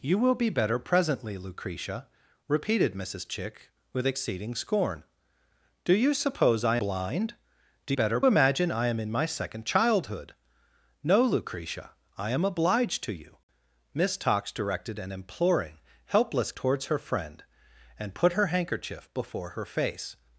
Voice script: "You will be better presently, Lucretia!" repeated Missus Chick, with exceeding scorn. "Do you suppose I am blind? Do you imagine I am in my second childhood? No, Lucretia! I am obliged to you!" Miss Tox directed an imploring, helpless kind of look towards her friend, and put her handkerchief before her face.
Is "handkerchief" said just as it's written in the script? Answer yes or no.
yes